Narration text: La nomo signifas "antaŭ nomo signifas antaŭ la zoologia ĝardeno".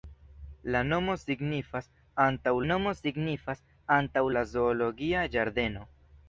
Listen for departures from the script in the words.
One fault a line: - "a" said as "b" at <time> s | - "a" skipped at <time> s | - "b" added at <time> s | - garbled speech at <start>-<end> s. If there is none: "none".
none